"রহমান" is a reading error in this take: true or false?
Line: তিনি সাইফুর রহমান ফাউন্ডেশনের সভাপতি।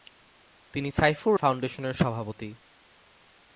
true